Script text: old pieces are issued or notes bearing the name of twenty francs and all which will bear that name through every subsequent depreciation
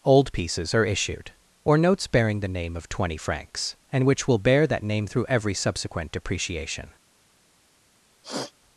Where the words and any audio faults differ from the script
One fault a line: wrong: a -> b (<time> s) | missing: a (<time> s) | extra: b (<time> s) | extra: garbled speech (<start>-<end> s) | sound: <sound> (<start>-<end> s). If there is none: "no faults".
missing: all (4.1 s)
sound: sniff (8.2-8.5 s)